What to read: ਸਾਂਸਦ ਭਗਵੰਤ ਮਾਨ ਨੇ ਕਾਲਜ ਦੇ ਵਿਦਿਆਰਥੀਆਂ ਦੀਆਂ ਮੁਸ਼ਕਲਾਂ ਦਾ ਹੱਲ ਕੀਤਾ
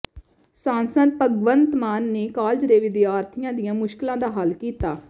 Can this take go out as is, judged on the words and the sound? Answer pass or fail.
pass